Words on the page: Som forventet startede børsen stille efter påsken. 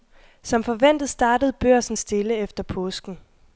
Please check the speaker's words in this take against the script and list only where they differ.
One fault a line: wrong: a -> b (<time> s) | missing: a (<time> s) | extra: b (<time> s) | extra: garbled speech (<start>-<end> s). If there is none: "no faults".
no faults